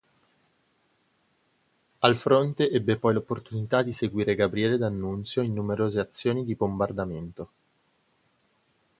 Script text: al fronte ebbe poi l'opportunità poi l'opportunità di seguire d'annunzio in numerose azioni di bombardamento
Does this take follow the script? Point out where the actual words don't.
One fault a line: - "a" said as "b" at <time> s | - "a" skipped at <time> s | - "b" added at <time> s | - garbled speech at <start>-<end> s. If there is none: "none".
- "poi l'opportunità" skipped at 3.8 s
- "gabriele" added at 4.4 s